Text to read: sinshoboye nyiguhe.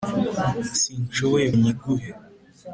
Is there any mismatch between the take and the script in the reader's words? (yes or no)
no